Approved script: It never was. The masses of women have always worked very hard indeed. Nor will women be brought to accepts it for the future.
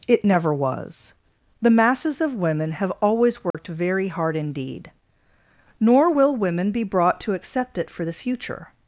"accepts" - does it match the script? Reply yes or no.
no